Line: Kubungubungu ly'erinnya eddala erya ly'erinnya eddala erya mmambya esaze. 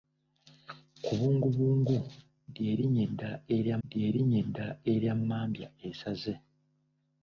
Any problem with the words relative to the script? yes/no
no